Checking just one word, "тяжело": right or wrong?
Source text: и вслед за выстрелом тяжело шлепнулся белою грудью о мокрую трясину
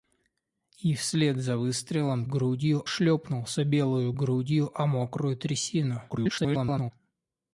wrong